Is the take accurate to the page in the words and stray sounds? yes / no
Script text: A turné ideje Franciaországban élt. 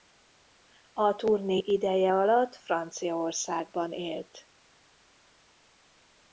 no